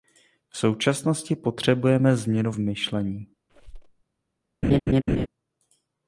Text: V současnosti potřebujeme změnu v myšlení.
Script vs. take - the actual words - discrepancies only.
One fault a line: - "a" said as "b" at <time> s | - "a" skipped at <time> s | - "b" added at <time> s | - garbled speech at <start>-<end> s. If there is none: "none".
- "v" skipped at 2.5 s